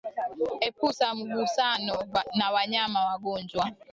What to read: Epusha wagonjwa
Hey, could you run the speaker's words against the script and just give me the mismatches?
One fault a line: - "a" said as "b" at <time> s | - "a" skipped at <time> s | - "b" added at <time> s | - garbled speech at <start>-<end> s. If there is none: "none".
- "mgusano na wanyama" added at 1.1 s